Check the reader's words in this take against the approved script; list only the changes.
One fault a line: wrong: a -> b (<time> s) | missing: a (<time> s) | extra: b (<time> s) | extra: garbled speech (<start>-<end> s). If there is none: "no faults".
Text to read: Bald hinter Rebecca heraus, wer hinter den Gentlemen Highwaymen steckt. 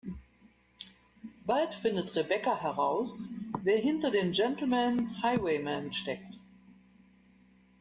wrong: hinter -> findet (1.8 s)